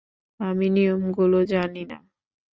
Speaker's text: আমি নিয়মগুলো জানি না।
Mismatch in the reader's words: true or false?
false